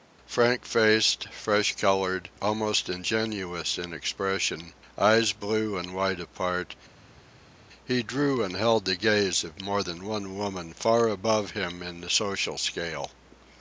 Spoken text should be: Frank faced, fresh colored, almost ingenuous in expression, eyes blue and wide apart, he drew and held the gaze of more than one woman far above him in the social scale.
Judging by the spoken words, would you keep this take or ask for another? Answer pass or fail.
pass